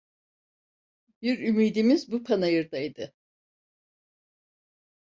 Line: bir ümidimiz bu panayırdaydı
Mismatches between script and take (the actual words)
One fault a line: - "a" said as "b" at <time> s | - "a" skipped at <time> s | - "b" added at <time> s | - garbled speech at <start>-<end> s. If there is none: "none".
none